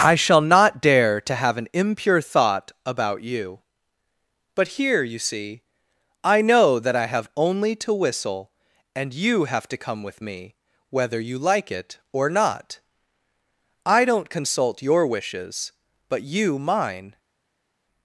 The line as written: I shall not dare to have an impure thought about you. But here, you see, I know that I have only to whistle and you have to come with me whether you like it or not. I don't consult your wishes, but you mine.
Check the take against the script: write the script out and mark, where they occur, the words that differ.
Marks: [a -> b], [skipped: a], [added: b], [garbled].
I shall not dare to have an impure thought about you. But here, you see, I know that I have only to whistle and you have to come with me whether you like it or not. I don't consult your wishes, but you mine.